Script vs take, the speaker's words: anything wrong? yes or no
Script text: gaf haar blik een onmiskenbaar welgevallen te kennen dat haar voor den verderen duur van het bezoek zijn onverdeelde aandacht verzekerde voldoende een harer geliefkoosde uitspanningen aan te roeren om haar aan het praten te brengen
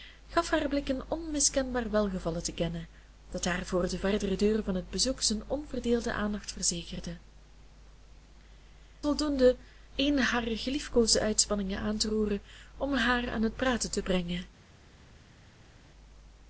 no